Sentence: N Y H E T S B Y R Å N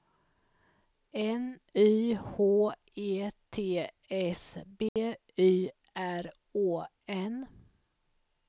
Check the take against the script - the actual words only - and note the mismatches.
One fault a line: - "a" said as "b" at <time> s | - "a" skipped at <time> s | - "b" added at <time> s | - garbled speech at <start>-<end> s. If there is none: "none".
none